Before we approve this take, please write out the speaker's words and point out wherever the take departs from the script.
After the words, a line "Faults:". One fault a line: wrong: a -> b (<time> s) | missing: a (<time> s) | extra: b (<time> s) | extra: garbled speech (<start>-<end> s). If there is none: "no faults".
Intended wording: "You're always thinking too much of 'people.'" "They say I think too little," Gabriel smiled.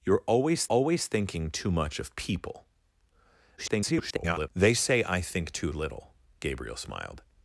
"You're always always thinking too much of 'people.'" [garbled] "They say I think too little," Gabriel smiled.
Faults:
extra: always (0.7 s)
extra: garbled speech (3.6-4.5 s)